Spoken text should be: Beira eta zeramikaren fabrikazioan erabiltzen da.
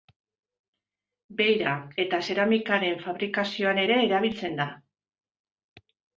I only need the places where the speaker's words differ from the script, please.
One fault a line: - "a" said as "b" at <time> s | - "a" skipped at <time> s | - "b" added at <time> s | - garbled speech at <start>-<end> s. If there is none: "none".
- "ere" added at 3.8 s